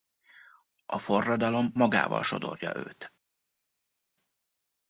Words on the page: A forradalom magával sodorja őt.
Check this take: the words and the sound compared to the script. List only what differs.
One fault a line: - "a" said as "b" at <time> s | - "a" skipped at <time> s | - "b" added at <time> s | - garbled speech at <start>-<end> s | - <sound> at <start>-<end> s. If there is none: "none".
none